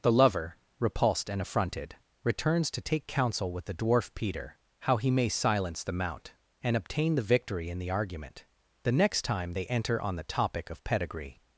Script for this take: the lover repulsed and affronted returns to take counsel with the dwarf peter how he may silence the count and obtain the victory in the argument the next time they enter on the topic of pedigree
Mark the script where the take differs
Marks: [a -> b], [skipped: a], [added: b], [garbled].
the lover repulsed and affronted returns to take counsel with the dwarf peter how he may silence the [count -> mount] and obtain the victory in the argument the next time they enter on the topic of pedigree